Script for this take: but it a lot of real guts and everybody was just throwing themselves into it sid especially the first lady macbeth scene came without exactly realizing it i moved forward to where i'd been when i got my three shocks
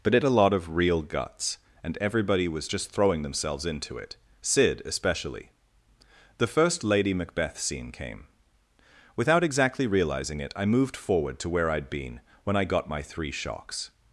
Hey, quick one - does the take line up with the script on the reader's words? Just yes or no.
yes